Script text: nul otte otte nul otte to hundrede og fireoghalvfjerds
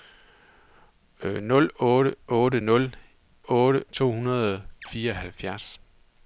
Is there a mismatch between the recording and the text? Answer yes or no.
no